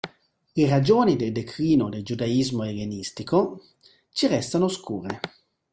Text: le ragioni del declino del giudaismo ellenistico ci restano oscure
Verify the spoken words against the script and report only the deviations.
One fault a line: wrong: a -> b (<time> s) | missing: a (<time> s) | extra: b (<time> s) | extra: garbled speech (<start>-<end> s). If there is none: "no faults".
no faults